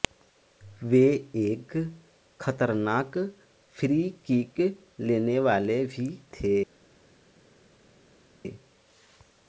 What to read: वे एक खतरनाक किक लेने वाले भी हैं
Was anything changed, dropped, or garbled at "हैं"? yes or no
yes